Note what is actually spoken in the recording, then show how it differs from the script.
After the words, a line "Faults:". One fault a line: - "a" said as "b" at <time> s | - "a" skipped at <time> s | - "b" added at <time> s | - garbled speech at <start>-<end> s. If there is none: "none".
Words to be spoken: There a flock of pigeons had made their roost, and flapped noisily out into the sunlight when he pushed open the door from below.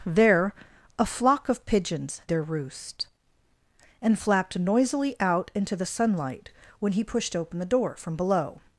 There a flock of pigeons their roost, and flapped noisily out into the sunlight when he pushed open the door from below.
Faults:
- "had made" skipped at 2.2 s